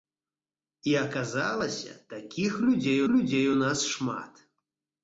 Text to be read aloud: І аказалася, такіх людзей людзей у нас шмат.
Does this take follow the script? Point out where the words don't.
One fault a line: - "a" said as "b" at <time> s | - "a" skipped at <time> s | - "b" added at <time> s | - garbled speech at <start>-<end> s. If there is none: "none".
none